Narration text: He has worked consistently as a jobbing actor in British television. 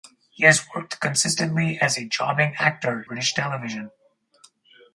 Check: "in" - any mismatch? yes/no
yes